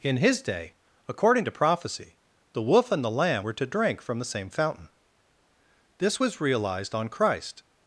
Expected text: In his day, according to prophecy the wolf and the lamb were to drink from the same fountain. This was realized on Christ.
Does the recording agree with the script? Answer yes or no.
yes